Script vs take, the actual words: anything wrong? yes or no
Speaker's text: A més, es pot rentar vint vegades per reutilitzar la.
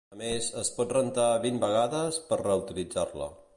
no